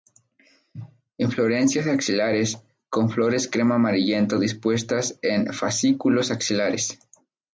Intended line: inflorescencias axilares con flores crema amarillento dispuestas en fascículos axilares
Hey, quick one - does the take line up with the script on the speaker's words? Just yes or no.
yes